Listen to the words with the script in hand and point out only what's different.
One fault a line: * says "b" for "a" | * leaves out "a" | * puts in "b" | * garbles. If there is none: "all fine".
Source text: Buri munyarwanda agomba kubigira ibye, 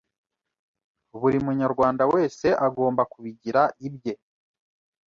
* puts in "wese"